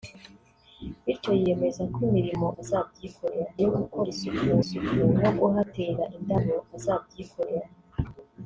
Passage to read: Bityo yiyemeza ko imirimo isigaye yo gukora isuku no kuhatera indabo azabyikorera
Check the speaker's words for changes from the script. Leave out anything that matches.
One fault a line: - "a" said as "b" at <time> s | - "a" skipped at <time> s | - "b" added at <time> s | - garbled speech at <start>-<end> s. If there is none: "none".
- "isigaye" said as "azabyikorera" at 2.6 s
- "isuku" added at 4.6 s